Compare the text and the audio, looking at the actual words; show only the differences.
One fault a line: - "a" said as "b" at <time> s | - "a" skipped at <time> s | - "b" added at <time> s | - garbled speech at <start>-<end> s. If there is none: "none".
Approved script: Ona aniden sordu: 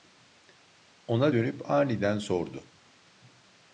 - "dönüp" added at 1.3 s